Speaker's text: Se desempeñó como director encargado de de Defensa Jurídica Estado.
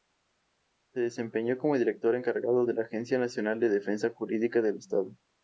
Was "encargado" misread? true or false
false